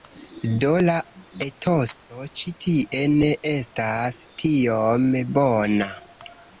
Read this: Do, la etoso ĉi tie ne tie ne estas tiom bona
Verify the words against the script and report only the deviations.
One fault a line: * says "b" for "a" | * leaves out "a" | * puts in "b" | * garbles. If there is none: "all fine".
* leaves out "tie ne"